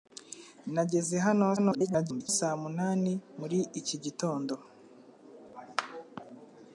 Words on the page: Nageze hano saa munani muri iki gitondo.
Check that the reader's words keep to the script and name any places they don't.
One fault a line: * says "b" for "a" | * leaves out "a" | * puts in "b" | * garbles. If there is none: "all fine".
* garbles